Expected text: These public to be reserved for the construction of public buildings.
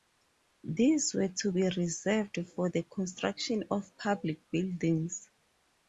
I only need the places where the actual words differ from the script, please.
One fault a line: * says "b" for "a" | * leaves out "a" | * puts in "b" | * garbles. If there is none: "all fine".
* says "were" for "public"